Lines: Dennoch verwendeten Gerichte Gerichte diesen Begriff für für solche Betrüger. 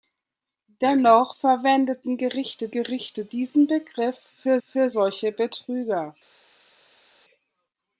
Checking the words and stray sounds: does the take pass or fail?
pass